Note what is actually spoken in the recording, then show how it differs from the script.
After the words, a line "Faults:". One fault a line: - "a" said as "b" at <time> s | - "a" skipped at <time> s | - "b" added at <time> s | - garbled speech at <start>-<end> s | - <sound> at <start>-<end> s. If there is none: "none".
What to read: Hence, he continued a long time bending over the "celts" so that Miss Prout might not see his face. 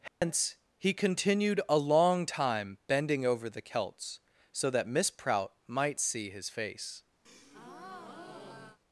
Hence, he continued a long time bending over the "celts" so that Miss Prout might see his face.
Faults:
- dropout at 0.1-0.2 s
- "not" skipped at 6.0 s
- breath at 7.3-8.8 s